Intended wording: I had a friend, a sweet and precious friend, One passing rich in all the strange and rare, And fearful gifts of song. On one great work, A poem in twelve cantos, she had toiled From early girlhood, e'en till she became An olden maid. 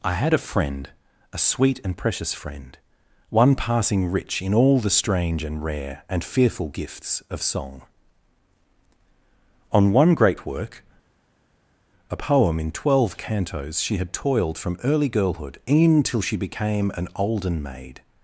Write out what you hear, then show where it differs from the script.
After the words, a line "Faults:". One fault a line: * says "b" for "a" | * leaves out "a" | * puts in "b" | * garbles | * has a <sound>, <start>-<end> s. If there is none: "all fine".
I had a friend, a sweet and precious friend, One passing rich in all the strange and rare, And fearful gifts of song. On one great work, A poem in twelve cantos, she had toiled From early girlhood, e'en till she became An olden maid.
Faults:
all fine